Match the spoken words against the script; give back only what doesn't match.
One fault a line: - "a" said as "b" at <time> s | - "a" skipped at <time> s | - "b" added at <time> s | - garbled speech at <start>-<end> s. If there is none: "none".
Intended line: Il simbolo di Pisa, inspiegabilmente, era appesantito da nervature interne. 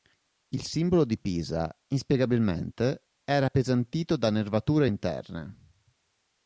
none